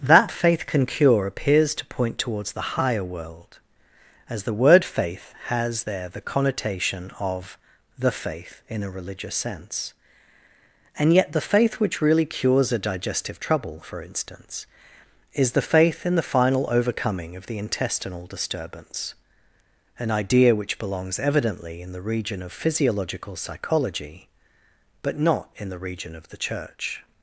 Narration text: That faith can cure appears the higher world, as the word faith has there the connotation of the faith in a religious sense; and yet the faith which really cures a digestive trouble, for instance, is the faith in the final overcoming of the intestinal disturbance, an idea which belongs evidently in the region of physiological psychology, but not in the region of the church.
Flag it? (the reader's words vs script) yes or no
yes